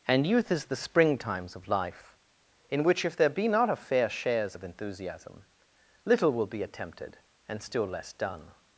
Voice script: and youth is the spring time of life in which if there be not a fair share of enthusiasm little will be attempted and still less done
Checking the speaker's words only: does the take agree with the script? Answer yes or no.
no